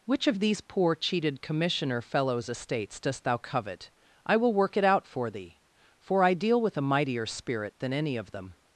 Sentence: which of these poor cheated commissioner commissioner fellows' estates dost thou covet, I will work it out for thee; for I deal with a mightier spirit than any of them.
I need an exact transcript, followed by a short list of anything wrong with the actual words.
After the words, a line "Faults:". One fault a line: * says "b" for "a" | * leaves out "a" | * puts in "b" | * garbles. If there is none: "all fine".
which of these poor cheated commissioner fellows' estates dost thou covet, I will work it out for thee; for I deal with a mightier spirit than any of them.
Faults:
* leaves out "commissioner"